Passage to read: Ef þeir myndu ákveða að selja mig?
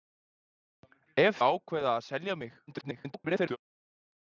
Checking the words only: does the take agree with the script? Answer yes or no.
no